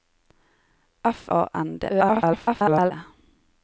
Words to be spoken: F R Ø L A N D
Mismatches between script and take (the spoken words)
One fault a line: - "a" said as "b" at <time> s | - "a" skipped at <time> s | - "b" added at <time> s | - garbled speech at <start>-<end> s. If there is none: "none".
- "R Ø L" skipped at 1.3 s
- garbled speech at 1.9-2.9 s